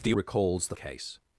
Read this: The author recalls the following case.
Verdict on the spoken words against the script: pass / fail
fail